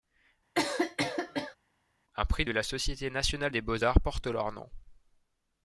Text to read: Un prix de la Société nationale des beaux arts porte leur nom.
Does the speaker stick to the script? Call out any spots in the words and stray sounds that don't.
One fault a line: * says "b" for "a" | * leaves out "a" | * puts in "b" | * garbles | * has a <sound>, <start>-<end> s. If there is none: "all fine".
* has a cough, 0.5-1.6 s